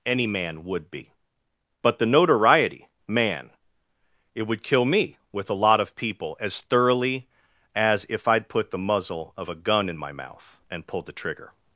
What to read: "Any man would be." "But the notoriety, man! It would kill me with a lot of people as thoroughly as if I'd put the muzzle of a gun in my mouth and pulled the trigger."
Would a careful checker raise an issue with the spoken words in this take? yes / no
no